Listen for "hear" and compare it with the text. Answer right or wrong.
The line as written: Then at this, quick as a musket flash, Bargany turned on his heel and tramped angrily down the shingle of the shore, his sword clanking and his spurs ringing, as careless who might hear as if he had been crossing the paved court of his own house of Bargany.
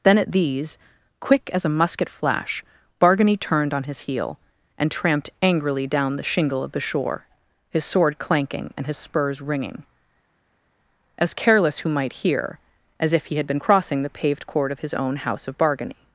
right